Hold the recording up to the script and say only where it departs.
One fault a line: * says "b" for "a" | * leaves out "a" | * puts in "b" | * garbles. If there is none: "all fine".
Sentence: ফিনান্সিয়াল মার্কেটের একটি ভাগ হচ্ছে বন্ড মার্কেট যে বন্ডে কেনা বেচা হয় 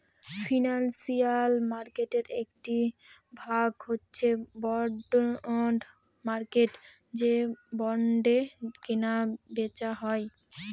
all fine